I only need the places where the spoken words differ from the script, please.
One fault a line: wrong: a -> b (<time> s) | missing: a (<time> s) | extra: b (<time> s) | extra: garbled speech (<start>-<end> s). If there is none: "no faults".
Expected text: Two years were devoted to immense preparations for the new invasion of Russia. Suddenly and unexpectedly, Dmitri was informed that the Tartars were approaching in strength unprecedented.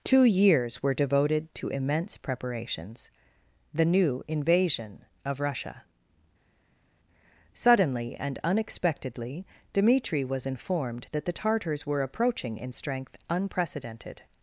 missing: for (3.1 s)